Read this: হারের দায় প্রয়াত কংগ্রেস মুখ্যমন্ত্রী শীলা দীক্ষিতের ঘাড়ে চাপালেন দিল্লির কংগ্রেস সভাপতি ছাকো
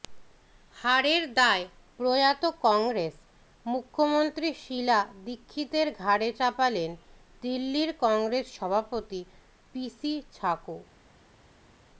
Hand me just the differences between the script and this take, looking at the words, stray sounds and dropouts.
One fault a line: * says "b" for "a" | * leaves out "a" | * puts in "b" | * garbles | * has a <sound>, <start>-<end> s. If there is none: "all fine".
* puts in "পিসি"